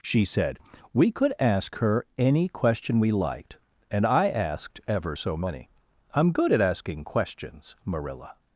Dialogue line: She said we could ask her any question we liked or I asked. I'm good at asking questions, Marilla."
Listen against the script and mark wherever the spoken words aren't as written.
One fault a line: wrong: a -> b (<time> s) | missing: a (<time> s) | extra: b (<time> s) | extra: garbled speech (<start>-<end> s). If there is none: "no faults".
wrong: or -> and (3.9 s)
extra: ever so many (4.9 s)